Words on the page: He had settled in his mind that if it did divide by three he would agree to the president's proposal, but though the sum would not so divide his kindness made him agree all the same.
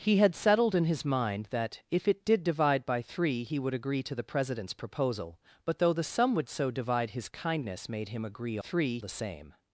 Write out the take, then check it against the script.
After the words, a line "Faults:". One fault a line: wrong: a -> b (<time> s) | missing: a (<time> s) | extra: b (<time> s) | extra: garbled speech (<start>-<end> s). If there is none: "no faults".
He had settled in his mind that if it did divide by three he would agree to the president's proposal, but though the sum would so divide his kindness made him agree three the same.
Faults:
missing: not (6.5 s)
wrong: all -> three (8.6 s)